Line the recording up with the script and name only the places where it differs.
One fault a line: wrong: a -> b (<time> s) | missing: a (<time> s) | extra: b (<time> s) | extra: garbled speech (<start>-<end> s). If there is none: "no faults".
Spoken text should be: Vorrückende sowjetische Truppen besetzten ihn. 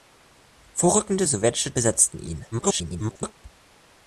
missing: Truppen (1.8 s)
extra: garbled speech (2.5-3.3 s)